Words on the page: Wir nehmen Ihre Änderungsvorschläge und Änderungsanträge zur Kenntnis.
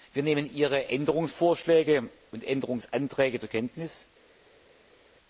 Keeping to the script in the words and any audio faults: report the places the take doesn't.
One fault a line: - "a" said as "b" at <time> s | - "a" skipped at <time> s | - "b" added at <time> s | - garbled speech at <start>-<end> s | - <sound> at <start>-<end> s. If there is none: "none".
none